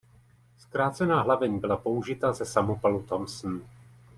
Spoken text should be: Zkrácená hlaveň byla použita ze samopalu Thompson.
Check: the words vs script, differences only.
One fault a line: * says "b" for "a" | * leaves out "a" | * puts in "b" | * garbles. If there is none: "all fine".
all fine